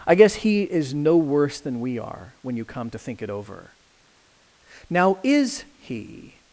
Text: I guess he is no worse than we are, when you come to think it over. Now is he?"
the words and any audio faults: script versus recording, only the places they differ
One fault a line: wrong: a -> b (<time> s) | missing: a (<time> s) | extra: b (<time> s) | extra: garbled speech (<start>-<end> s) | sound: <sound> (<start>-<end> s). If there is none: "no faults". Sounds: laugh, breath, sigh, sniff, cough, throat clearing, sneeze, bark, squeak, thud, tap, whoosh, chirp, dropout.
no faults